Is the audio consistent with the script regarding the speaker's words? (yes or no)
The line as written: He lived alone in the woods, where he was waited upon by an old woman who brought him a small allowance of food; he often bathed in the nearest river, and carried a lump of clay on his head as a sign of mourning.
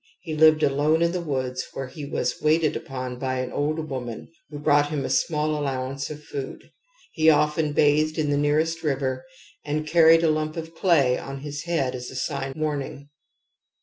no